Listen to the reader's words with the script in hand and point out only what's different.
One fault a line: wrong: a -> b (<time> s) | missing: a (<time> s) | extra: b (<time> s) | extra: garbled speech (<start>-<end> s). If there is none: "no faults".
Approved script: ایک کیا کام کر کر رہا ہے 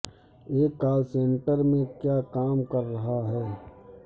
extra: کال سینٹر میں (0.8 s)
missing: کر (2.8 s)